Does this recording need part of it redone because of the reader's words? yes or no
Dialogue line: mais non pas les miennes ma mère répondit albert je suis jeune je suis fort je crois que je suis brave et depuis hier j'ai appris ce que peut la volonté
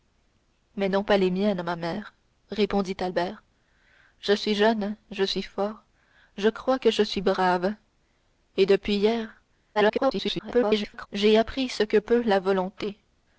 yes